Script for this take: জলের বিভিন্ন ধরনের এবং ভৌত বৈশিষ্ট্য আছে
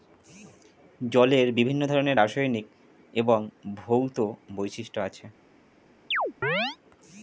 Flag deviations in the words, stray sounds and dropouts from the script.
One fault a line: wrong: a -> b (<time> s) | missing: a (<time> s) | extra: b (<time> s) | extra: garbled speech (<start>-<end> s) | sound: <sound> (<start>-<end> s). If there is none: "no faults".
extra: রাসায়নিক (2.2 s)
sound: chirp (6.1-6.8 s)